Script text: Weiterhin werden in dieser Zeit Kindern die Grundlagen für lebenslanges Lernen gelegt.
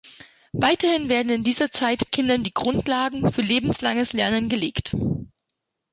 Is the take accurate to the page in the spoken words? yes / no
yes